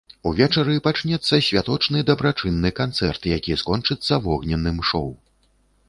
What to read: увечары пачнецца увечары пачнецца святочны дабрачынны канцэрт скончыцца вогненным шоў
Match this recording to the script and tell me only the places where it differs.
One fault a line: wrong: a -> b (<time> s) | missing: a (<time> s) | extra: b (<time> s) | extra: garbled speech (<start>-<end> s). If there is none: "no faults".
missing: увечары пачнецца (1.4 s)
extra: які (3.4 s)